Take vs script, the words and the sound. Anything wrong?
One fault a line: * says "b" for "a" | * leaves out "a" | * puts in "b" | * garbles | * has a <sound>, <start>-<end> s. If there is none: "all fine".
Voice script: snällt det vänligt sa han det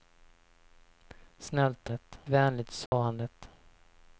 * has a dropout, 2.9-2.9 s